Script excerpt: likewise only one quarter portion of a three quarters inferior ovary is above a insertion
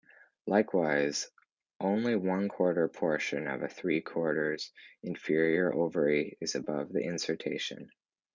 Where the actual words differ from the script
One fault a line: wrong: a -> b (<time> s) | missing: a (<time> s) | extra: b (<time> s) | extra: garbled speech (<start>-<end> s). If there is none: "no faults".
wrong: a -> the (6.9 s)